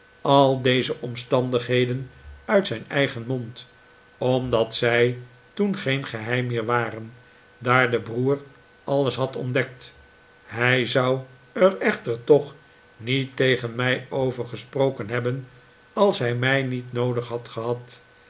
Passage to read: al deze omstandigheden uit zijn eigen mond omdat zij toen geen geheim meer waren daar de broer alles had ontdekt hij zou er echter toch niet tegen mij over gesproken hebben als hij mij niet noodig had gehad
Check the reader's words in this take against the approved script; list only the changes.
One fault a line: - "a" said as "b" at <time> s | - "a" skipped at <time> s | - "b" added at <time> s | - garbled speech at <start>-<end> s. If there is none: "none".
none